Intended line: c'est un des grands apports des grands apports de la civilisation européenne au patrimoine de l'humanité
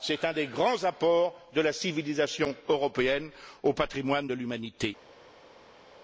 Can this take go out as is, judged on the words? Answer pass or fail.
fail